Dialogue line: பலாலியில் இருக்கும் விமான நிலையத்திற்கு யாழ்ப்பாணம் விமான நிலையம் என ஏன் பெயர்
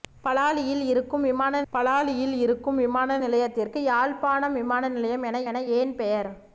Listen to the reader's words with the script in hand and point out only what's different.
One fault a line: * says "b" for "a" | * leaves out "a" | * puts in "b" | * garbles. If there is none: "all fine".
* puts in "பலாலியில் இருக்கும் விமான"
* puts in "என"